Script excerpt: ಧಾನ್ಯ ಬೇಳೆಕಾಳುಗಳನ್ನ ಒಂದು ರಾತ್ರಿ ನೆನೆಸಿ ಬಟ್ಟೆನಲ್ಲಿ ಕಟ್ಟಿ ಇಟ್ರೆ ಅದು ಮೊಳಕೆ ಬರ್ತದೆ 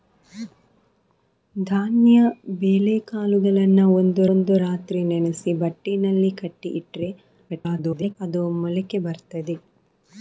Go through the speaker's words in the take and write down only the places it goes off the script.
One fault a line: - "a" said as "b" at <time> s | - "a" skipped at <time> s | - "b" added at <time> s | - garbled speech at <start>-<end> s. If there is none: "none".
- "ಒಂದು" added at 4.3 s
- garbled speech at 7.5-8.2 s